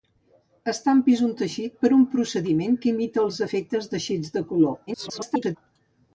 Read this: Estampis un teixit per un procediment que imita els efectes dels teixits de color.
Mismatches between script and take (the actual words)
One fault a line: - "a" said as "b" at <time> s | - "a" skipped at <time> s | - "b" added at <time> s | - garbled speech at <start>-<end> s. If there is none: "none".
- "dels" skipped at 3.9 s
- garbled speech at 4.9-5.6 s